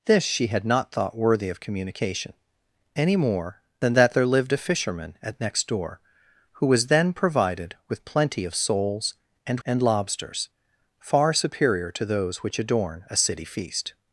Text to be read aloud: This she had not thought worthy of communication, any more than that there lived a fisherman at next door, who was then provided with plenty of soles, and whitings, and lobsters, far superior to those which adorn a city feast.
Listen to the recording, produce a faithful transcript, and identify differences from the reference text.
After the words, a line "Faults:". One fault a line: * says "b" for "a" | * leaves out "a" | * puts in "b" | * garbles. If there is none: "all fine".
This she had not thought worthy of communication, any more than that there lived a fisherman at next door, who was then provided with plenty of soles, and and lobsters, far superior to those which adorn a city feast.
Faults:
* leaves out "whitings"